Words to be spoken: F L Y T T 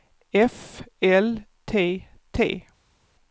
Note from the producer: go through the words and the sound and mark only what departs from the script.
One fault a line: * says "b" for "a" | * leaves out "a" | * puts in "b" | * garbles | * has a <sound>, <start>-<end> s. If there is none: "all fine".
* leaves out "Y"